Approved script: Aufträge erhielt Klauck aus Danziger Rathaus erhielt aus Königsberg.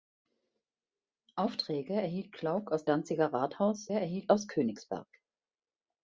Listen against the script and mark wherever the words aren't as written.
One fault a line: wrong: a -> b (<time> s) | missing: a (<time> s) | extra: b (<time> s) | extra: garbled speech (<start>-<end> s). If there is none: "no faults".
no faults